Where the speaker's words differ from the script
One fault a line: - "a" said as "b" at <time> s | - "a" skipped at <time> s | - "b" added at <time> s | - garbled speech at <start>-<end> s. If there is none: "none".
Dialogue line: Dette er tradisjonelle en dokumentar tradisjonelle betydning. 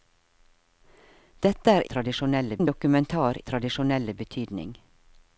none